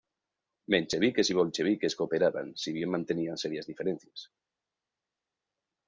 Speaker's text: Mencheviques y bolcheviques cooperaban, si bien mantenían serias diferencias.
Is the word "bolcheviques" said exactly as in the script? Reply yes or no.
yes